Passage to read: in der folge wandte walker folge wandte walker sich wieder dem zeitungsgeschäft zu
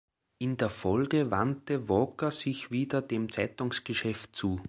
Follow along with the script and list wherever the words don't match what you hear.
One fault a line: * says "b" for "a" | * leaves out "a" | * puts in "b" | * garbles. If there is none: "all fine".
* leaves out "folge wandte walker"